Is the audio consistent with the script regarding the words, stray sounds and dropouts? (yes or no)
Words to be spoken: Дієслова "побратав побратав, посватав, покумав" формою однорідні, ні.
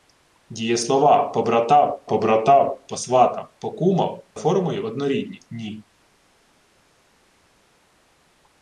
yes